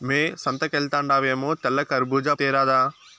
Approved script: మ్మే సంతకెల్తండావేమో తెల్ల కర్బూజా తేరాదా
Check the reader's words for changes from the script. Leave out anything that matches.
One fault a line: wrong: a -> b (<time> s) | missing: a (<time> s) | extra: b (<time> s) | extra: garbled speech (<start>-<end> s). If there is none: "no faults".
no faults